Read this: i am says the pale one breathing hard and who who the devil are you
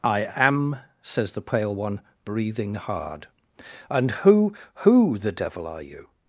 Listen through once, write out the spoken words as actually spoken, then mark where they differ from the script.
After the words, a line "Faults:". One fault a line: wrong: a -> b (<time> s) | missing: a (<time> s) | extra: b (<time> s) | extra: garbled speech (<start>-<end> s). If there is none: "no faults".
i am says the pale one breathing hard and who who the devil are you
Faults:
no faults